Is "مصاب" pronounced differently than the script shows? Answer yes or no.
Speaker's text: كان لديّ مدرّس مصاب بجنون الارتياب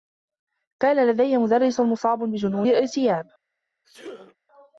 no